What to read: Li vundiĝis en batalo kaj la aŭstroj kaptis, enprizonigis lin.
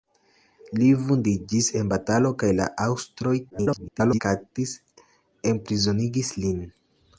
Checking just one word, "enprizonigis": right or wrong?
right